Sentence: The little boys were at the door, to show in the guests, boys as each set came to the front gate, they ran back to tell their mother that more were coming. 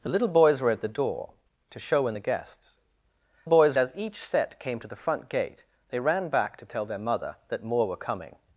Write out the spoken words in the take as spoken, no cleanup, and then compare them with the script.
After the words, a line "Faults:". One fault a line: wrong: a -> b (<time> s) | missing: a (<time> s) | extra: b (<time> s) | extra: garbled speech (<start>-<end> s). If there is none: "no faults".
The little boys were at the door, to show in the guests, boys as each set came to the front gate, they ran back to tell their mother that more were coming.
Faults:
no faults